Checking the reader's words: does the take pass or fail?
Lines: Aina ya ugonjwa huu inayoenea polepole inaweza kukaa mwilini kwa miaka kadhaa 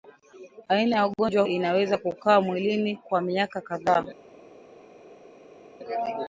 fail